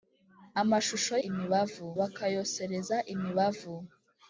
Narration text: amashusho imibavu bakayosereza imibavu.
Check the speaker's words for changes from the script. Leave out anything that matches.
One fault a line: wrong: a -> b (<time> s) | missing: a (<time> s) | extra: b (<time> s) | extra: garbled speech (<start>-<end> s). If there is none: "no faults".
no faults